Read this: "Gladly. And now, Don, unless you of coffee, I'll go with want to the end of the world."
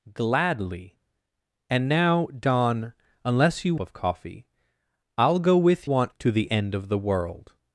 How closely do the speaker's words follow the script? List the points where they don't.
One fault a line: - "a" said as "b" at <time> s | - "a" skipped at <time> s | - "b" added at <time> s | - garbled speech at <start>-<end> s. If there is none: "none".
none